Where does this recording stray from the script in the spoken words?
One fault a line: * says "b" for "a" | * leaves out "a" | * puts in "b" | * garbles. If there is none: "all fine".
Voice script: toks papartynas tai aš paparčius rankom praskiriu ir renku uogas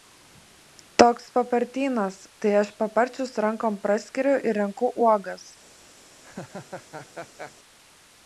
all fine